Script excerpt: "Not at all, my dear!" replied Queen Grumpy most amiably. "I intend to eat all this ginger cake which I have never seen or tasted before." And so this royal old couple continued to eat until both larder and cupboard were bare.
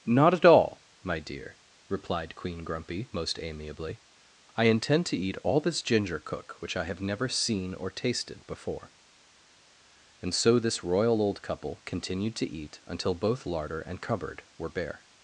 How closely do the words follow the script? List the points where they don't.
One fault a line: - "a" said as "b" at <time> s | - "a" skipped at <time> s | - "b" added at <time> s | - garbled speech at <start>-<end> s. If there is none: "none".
- "cake" said as "cook" at 6.2 s